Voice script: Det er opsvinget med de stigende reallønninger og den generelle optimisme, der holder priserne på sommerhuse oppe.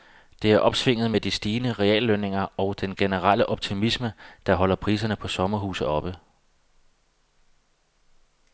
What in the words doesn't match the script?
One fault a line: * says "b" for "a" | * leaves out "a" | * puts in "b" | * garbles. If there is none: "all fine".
all fine